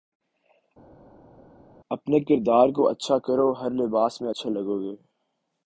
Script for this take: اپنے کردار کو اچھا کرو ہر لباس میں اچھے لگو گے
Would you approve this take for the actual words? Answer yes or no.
yes